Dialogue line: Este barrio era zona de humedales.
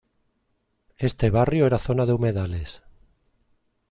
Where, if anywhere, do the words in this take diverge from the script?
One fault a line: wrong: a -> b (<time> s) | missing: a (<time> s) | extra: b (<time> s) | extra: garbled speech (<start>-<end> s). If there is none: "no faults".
no faults